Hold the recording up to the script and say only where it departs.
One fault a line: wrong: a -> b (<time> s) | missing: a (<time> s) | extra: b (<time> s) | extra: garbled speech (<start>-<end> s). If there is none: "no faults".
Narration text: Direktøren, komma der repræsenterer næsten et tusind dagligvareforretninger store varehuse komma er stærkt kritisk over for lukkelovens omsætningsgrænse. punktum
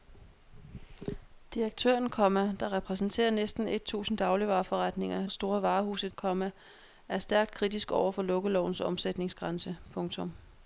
no faults